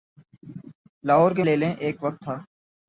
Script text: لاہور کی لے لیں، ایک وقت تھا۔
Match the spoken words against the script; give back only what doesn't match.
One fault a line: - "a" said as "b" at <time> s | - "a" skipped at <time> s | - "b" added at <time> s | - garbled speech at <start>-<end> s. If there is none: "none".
none